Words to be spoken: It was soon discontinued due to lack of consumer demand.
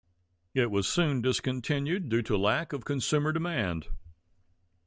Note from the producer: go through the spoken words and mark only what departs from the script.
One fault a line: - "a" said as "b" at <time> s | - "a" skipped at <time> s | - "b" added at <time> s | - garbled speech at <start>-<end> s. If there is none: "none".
none